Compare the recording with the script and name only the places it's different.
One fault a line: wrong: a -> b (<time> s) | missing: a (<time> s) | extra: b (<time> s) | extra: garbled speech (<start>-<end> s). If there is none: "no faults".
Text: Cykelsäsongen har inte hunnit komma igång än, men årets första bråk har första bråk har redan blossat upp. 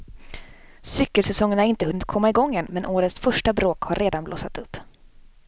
missing: första bråk har (4.0 s)